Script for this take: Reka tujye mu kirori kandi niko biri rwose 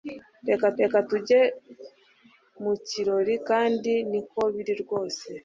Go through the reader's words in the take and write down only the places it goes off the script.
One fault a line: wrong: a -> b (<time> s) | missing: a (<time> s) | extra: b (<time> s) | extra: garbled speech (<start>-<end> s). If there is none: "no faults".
extra: reka (0.8 s)